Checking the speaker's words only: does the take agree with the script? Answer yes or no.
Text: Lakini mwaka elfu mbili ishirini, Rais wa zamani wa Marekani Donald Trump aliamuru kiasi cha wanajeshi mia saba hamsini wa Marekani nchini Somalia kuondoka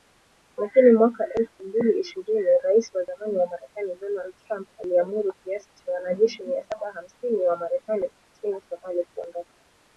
yes